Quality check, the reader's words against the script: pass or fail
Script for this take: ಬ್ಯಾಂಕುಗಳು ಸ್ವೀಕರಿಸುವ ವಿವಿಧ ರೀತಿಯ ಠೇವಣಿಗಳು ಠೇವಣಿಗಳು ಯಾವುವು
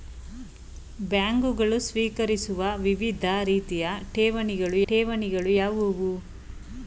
pass